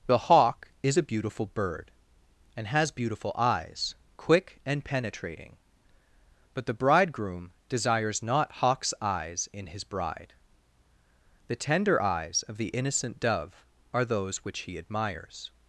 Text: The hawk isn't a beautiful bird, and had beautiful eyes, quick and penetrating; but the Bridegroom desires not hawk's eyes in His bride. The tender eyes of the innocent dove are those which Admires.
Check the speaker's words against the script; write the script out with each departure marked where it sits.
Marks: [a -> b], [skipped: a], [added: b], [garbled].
The hawk [isn't -> is] a beautiful bird, and [had -> has] beautiful eyes, quick and penetrating; but the Bridegroom desires not hawk's eyes in His bride. The tender eyes of the innocent dove are those which [added: He] Admires.